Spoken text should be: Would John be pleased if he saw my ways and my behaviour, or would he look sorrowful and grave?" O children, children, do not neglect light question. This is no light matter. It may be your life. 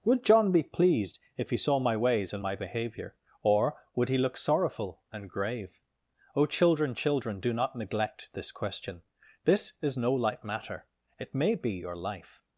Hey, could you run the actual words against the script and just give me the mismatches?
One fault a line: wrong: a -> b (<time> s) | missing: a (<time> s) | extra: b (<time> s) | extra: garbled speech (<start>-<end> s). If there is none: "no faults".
wrong: light -> this (8.3 s)